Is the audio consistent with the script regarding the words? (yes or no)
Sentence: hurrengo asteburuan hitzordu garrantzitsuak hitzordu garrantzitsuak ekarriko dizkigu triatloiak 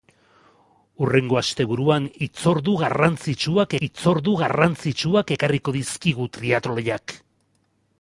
yes